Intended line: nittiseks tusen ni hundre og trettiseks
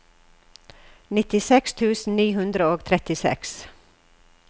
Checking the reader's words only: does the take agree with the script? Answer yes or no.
yes